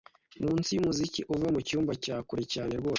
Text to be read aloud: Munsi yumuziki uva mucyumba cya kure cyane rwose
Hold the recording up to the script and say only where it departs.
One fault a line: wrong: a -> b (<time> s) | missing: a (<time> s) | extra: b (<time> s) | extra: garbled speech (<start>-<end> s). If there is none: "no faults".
no faults